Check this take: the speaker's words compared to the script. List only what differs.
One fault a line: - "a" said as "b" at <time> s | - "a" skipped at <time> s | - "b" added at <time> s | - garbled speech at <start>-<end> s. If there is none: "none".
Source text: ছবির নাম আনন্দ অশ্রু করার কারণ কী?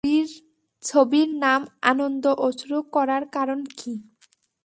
none